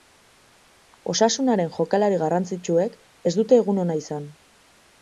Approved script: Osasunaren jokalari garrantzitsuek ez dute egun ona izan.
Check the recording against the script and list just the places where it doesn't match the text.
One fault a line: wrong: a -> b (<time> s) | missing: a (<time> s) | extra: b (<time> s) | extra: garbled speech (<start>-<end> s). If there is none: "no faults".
no faults